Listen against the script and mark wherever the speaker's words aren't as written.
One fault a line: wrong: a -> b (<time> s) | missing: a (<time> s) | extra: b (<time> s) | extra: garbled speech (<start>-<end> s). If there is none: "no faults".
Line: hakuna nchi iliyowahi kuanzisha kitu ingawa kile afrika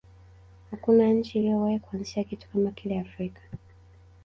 wrong: ingawa -> kama (2.5 s)